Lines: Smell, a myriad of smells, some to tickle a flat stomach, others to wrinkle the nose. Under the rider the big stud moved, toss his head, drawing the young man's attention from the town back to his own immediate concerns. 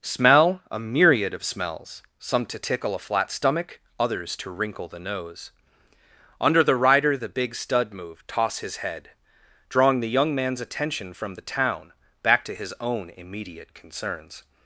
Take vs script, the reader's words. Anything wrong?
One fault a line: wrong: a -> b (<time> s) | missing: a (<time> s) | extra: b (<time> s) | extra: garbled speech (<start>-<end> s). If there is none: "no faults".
no faults